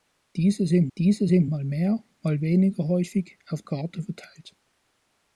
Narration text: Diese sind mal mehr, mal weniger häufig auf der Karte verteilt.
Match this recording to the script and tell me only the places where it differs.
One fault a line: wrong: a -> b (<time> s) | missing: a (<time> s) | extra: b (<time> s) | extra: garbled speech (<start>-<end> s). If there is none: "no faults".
extra: diese sind (1.0 s)
missing: der (3.6 s)